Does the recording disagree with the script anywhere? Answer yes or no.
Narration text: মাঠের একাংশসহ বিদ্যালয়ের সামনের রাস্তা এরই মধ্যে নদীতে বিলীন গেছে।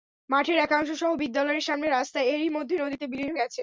no